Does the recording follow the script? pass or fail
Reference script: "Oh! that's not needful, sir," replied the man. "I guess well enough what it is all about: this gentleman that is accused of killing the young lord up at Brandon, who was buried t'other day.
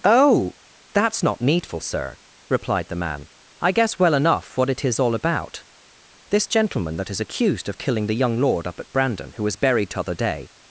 pass